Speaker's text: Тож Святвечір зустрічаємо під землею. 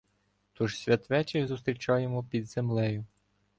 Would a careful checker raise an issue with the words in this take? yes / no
no